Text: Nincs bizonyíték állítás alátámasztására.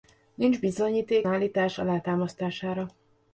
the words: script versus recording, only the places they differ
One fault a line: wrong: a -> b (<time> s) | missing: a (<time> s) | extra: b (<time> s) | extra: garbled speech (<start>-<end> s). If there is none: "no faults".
no faults